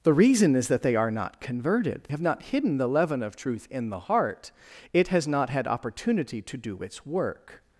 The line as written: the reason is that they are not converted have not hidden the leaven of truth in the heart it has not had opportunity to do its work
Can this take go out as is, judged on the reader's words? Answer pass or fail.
pass